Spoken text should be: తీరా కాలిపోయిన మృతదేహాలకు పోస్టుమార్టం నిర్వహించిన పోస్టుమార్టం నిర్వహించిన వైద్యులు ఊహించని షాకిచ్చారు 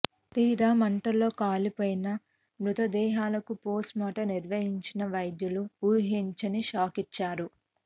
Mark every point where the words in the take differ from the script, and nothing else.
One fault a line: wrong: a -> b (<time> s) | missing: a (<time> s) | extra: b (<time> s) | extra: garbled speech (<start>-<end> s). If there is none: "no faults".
extra: మంటల్లో (0.8 s)
missing: పోస్టుమార్టం నిర్వహించిన (5.0 s)